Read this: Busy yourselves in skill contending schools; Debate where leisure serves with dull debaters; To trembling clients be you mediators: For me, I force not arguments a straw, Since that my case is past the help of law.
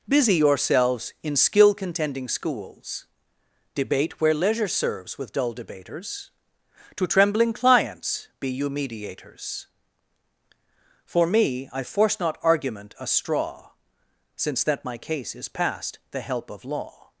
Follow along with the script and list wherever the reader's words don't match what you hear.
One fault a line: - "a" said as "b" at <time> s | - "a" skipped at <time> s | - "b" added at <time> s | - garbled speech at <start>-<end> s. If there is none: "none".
- "arguments" said as "argument" at 12.4 s